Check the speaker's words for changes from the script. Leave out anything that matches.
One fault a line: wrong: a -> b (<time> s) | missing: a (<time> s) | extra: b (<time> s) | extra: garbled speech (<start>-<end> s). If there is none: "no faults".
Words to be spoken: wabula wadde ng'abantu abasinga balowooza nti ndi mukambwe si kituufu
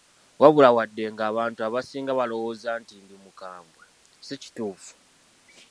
no faults